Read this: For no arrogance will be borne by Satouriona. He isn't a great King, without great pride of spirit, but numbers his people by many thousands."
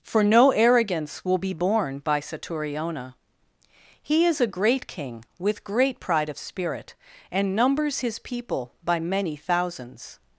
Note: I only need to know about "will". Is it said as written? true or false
true